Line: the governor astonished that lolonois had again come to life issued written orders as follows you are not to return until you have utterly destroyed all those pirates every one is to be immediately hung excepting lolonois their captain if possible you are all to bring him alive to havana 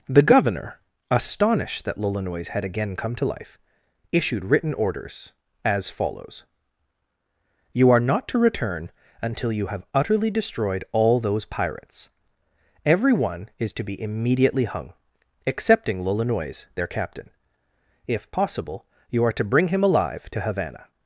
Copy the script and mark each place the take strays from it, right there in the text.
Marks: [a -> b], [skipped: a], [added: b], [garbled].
the governor astonished that lolonois had again come to life issued written orders as follows you are not to return until you have utterly destroyed all those pirates every one is to be immediately hung excepting lolonois their captain if possible you are [skipped: all] to bring him alive to havana